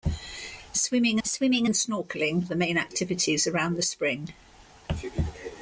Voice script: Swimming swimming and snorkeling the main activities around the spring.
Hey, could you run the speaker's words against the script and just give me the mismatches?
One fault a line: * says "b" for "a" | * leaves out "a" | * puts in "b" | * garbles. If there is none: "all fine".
all fine